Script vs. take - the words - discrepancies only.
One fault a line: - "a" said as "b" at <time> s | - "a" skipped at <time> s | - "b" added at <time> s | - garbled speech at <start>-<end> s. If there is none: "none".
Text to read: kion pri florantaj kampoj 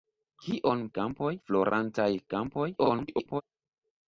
- "pri" said as "kampoj" at 1.0 s
- garbled speech at 2.8-3.4 s